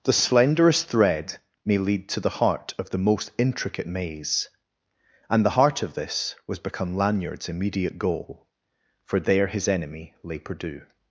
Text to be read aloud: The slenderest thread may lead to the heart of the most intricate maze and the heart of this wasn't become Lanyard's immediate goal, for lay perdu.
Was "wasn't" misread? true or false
true